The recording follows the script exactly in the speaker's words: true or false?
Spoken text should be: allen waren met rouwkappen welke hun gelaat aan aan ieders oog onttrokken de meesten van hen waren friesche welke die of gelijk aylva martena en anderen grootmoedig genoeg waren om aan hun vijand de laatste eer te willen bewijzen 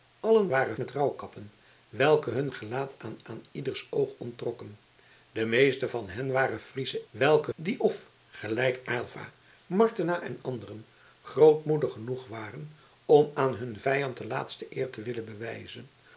true